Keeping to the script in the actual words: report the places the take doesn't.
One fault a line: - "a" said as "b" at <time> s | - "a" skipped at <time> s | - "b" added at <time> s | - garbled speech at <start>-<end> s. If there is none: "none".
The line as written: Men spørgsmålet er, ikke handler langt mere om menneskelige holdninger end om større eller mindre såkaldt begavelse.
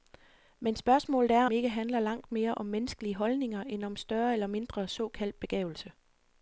none